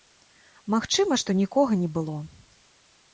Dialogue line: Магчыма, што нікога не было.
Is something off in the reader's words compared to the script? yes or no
no